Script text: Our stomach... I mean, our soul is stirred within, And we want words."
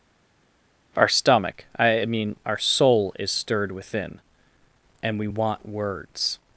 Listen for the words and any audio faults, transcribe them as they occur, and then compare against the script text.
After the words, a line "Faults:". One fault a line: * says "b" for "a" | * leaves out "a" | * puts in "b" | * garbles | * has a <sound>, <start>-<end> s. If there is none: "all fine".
Our stomach... I mean, our soul is stirred within, And we want words."
Faults:
all fine